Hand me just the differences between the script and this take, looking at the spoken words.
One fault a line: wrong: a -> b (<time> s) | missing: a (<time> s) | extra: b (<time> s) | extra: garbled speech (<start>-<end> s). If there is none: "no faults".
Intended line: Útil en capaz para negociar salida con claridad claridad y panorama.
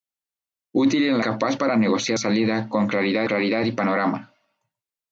no faults